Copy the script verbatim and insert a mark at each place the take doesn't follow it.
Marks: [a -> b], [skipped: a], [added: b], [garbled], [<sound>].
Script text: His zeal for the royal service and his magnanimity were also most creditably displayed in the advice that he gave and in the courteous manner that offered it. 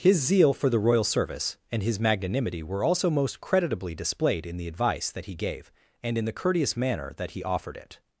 His zeal for the royal service and his magnanimity were also most creditably displayed in the advice that he gave and in the courteous manner that [added: he] offered it.